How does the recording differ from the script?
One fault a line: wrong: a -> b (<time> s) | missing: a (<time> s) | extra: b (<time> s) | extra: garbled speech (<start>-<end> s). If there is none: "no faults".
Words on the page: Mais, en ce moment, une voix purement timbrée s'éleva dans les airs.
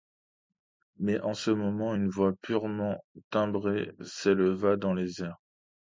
no faults